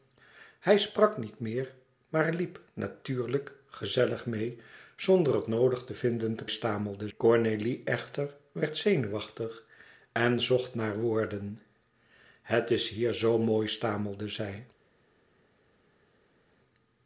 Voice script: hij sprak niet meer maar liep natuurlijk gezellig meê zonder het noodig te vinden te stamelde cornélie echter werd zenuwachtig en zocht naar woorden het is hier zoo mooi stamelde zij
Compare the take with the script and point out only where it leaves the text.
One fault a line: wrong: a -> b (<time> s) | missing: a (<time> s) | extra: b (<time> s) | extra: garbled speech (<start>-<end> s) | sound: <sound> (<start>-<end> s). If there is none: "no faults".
no faults